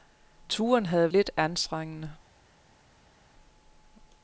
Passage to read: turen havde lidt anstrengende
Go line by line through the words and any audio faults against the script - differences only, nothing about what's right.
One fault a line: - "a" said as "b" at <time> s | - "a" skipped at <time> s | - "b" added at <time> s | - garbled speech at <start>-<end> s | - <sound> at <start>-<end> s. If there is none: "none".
none